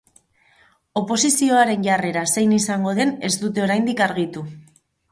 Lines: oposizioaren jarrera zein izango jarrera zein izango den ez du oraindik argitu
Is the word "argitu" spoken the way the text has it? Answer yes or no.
yes